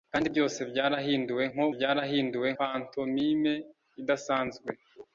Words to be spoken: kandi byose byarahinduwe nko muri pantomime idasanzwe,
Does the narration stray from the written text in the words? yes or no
yes